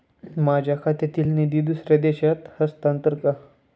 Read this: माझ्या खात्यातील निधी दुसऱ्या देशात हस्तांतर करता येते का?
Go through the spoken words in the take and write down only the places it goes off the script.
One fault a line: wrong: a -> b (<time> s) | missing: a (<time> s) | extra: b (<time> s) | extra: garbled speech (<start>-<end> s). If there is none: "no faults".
missing: करता येते (3.1 s)